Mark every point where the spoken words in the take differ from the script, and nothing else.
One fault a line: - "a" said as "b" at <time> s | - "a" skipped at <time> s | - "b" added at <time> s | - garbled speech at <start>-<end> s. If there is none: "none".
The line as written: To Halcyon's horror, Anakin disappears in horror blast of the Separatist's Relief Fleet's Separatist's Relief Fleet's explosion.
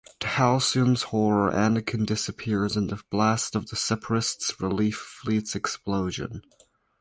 - "horror" said as "the" at 2.9 s
- "Separatist's Relief Fleet's" skipped at 5.5 s